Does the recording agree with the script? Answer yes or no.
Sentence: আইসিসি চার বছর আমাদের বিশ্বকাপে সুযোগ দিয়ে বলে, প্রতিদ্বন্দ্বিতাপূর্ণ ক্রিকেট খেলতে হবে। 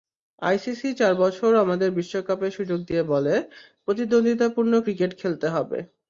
yes